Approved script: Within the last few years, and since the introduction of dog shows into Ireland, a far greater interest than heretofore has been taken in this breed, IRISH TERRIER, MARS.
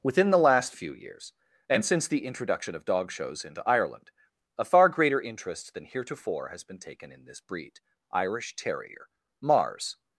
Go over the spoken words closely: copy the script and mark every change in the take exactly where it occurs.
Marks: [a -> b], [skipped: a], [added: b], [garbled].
Within the last few years, and since the introduction of dog shows into Ireland, a far greater interest than heretofore has been taken in this breed, IRISH TERRIER, MARS.